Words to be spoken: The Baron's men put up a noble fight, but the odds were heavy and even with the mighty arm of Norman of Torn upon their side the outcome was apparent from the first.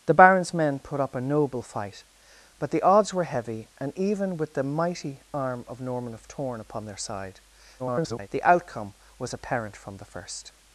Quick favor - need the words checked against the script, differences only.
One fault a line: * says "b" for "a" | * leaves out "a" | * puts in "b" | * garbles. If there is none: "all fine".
* garbles